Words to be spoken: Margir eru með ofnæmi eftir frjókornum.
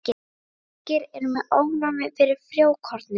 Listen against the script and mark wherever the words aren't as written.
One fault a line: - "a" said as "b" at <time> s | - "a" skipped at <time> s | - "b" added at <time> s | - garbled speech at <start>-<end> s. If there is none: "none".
- "eftir" said as "fyrir" at 2.2 s